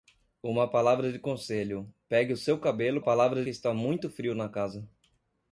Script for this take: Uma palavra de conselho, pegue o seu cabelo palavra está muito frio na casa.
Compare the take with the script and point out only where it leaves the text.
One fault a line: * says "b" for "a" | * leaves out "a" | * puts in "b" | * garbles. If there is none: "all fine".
all fine